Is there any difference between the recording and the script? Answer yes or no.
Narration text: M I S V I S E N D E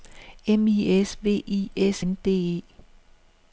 yes